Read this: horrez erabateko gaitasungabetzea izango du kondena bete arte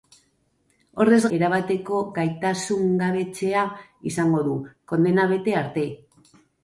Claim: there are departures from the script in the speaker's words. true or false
false